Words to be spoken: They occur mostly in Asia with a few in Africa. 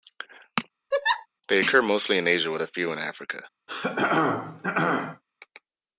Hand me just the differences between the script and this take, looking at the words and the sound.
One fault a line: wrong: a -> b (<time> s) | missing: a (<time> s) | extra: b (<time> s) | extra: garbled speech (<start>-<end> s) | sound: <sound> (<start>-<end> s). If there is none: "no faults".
sound: laugh (0.9-1.3 s)
sound: throat clearing (3.7-5.2 s)